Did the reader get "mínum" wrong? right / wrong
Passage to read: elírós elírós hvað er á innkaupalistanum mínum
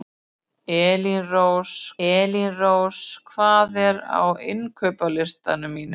right